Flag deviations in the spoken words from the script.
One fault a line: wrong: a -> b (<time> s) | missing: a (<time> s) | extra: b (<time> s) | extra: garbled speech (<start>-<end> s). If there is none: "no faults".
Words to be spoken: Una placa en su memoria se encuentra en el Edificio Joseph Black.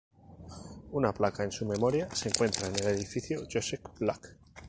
no faults